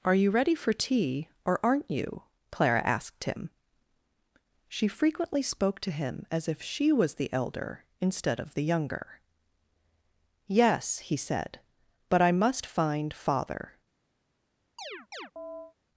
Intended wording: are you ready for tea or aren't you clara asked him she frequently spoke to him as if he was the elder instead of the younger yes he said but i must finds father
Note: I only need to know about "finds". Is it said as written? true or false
false